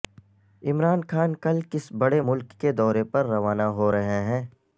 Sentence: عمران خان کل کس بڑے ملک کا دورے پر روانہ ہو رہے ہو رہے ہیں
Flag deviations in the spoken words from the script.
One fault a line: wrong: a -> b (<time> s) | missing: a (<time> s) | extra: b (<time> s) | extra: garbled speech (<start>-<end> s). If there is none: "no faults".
wrong: کا -> کے (2.6 s)
missing: ہو رہے (4.2 s)